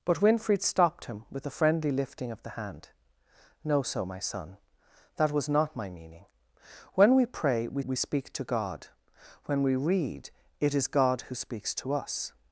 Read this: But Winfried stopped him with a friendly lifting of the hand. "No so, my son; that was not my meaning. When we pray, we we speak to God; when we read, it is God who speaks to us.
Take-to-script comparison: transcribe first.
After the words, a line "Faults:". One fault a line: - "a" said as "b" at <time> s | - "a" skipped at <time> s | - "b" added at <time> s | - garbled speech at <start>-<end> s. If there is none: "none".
But Winfried stopped him with a friendly lifting of the hand. "No so, my son; that was not my meaning. When we pray, we we speak to God; when we read, it is God who speaks to us.
Faults:
none